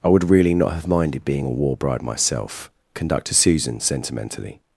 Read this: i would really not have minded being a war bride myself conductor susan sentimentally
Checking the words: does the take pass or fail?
pass